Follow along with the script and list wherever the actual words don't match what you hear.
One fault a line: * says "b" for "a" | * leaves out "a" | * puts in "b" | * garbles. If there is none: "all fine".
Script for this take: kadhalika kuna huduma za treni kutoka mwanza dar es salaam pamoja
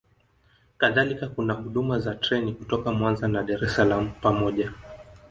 * puts in "na"